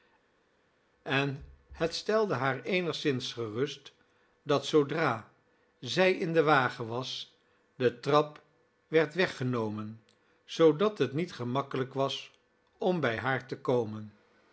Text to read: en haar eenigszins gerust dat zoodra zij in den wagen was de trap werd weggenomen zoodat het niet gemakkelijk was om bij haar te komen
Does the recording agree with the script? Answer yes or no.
no